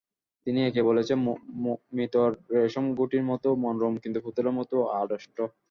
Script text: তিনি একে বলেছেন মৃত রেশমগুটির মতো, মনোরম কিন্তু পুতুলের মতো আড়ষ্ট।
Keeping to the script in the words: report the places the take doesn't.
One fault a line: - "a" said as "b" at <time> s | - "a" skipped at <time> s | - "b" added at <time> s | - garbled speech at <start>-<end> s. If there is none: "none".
none